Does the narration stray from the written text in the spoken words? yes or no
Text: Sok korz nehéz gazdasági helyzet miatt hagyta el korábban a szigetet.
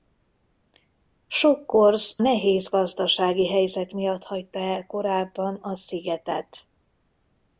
no